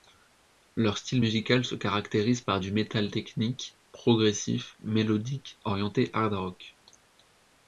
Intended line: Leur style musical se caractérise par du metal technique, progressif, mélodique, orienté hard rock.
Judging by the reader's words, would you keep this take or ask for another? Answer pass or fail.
pass